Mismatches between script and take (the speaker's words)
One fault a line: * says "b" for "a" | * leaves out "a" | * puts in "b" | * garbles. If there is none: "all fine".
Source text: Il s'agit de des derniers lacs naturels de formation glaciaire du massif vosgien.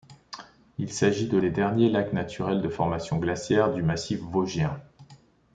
all fine